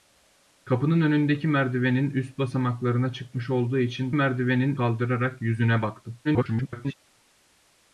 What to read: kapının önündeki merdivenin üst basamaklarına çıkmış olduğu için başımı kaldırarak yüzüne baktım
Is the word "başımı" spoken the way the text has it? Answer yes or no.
no